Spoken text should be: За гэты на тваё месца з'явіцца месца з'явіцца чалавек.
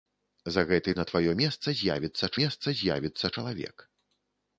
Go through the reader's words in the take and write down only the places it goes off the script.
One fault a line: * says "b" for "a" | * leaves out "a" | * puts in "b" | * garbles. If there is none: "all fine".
all fine